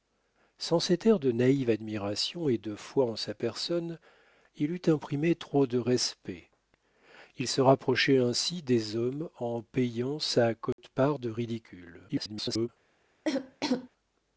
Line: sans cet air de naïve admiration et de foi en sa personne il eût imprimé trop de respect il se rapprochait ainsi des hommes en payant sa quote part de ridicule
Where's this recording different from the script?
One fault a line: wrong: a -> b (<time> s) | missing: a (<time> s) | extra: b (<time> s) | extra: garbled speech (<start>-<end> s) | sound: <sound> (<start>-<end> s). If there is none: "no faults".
sound: dropout (10.7-10.8 s)
extra: garbled speech (12.1-12.7 s)
sound: cough (13.3-13.9 s)